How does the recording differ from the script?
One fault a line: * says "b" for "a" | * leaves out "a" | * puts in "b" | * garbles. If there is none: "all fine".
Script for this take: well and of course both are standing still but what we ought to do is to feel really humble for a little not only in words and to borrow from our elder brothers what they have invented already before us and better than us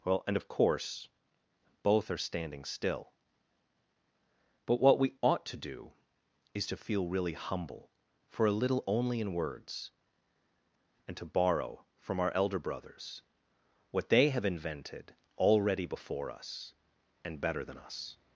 * leaves out "not"